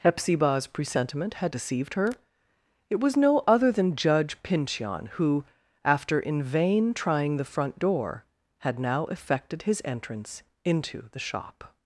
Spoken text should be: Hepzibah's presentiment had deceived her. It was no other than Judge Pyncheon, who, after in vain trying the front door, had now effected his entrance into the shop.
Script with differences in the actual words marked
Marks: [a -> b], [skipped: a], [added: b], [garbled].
Hepzibah's presentiment had deceived her. It was no other than Judge Pyncheon, who, after in vain trying the front door, had now effected his entrance into the shop.